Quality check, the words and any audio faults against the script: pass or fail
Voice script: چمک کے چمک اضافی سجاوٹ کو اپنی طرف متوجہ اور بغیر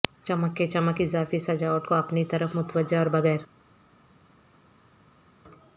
pass